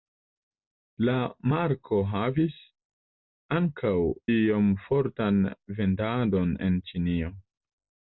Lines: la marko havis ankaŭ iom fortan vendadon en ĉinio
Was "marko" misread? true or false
false